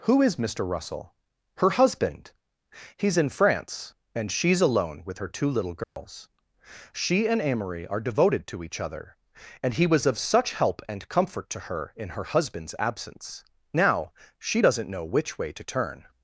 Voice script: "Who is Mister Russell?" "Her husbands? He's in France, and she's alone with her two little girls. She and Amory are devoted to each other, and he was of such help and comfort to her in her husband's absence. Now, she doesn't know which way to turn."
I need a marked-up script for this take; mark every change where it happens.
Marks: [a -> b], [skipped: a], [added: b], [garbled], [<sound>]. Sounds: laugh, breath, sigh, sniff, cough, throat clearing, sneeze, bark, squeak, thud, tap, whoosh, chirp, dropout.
"Who is Mister Russell?" "Her [husbands? -> husband] He's in France, and she's alone with her two little girls. [dropout] She and Amory are devoted to each other, and he was of such help and comfort to her in her husband's absence. Now, she doesn't know which way to turn."